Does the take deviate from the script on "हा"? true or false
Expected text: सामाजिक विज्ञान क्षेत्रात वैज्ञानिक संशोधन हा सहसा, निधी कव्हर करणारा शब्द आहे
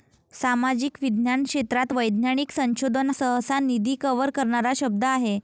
true